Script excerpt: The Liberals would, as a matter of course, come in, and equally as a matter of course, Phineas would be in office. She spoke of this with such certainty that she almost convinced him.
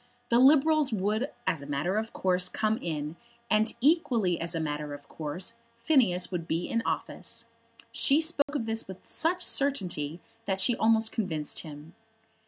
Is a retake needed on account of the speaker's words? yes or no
no